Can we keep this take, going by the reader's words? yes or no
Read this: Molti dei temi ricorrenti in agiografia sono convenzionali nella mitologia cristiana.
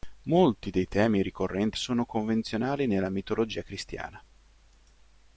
no